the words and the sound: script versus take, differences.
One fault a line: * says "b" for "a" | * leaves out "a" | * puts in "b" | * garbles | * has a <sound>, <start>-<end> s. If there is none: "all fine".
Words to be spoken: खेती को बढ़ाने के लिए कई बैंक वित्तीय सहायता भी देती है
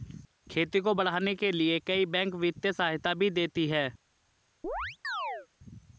* has a chirp, 4.6-5.5 s